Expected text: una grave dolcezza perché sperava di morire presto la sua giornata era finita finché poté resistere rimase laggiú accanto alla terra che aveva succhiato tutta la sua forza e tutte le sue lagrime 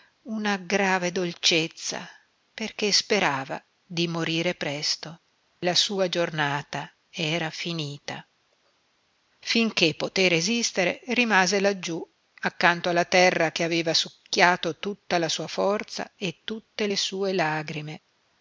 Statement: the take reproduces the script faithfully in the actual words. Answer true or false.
true